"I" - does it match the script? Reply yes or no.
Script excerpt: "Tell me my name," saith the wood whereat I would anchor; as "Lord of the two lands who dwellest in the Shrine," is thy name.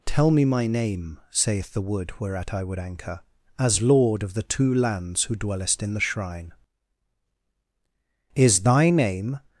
yes